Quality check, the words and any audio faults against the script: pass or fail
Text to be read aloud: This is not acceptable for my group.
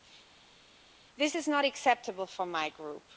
pass